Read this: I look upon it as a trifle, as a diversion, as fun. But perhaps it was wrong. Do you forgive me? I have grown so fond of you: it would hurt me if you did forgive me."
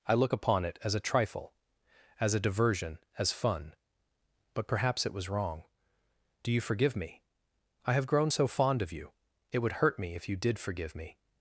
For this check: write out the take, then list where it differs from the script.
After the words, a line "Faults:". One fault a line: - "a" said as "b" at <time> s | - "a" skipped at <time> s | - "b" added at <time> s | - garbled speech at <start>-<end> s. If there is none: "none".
I look upon it as a trifle, as a diversion, as fun. But perhaps it was wrong. Do you forgive me? I have grown so fond of you: it would hurt me if you did forgive me."
Faults:
none